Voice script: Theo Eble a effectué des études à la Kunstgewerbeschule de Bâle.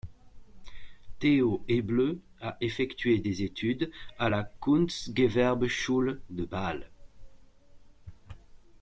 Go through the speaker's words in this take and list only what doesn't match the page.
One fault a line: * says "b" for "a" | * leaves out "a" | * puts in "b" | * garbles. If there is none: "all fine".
all fine